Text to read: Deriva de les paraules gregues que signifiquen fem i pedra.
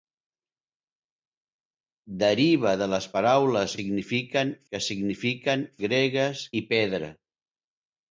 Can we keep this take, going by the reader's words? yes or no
no